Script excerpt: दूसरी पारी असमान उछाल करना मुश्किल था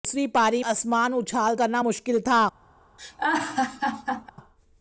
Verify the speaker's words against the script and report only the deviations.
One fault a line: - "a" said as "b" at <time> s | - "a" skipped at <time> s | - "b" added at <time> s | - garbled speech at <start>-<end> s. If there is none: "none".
none